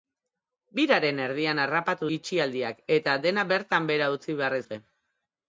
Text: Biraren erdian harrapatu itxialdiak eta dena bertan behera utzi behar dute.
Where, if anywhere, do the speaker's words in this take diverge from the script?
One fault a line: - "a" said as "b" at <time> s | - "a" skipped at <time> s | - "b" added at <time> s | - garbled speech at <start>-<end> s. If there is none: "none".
none